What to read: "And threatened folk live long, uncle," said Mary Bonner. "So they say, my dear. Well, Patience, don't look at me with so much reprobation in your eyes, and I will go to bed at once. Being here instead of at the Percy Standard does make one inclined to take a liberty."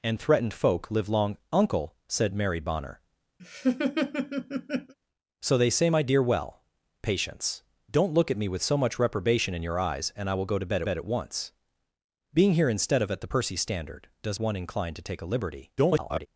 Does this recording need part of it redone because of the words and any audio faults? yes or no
yes